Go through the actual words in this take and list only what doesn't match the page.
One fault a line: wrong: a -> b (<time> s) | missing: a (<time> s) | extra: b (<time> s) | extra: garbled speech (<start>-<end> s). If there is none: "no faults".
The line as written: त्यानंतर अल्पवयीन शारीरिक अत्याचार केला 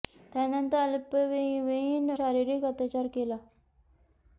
no faults